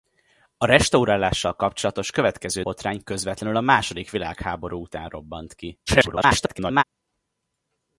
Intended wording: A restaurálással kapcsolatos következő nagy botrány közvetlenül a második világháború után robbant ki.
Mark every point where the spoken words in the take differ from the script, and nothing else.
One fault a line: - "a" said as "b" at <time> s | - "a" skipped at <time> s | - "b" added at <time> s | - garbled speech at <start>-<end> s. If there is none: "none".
- "nagy" skipped at 2.6 s
- garbled speech at 5.9-6.8 s